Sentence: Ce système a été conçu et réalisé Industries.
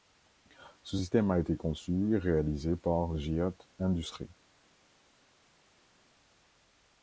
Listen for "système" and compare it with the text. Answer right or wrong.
right